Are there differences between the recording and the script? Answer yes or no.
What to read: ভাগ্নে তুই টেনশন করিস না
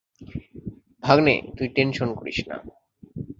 no